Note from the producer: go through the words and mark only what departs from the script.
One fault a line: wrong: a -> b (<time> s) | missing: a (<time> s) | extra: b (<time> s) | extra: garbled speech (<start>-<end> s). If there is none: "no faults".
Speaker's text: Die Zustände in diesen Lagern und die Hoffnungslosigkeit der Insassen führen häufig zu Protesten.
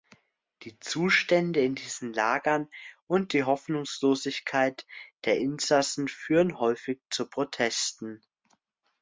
no faults